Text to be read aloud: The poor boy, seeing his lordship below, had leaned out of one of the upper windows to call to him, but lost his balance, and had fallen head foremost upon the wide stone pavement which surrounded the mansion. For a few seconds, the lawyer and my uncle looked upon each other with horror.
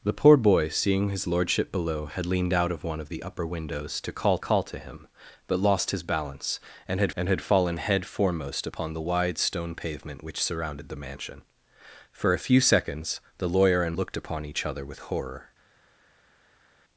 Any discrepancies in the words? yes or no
yes